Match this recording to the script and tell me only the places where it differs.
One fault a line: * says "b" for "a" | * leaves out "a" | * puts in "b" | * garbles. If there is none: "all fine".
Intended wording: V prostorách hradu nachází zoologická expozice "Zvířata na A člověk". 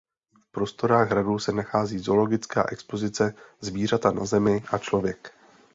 * puts in "se"
* puts in "Zemi"